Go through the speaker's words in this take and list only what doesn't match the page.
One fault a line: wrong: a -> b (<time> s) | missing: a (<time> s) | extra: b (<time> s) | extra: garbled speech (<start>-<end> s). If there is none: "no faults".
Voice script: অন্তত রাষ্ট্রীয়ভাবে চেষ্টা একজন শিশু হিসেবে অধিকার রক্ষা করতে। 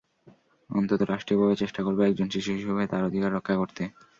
extra: করব (1.8 s)
extra: তার (2.9 s)